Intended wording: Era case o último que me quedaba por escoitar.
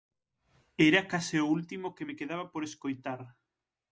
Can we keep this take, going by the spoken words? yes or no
yes